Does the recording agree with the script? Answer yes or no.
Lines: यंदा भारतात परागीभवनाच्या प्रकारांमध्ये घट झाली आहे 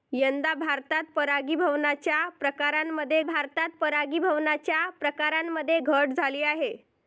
no